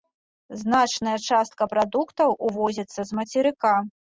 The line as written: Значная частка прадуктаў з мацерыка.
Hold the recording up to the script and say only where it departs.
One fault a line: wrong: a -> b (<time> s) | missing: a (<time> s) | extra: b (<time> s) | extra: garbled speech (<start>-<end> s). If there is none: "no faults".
extra: увозіцца (2.5 s)